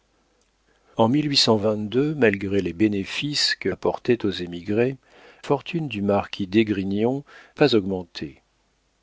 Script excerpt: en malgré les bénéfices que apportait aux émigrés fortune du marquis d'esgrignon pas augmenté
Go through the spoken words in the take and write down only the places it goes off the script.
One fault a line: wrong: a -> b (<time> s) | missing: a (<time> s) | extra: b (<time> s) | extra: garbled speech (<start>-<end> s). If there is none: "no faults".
no faults